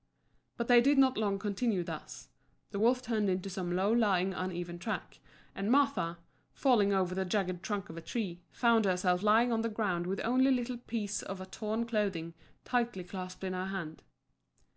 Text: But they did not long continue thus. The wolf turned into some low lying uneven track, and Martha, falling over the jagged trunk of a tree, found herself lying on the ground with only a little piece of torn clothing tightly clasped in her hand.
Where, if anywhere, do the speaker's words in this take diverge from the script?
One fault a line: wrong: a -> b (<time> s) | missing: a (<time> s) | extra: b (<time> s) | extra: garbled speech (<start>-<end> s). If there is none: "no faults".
no faults